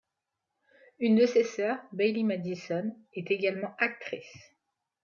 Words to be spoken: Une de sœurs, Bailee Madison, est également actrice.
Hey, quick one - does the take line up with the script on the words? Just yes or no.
no